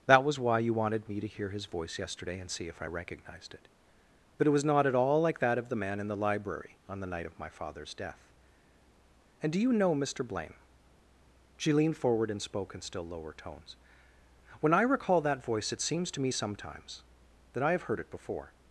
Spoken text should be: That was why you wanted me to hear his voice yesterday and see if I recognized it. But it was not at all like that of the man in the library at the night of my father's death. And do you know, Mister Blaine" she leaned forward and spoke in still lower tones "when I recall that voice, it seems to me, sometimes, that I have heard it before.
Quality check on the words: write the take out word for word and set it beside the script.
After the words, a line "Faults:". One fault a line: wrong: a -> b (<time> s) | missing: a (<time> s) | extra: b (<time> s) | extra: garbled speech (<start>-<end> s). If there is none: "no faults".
That was why you wanted me to hear his voice yesterday and see if I recognized it. But it was not at all like that of the man in the library on the night of my father's death. And do you know, Mister Blaine" she leaned forward and spoke in still lower tones "when I recall that voice, it seems to me, sometimes, that I have heard it before.
Faults:
wrong: at -> on (6.9 s)